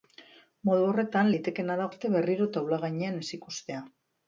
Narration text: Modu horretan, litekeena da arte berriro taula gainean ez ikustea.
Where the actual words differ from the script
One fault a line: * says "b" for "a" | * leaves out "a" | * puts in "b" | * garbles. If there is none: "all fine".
all fine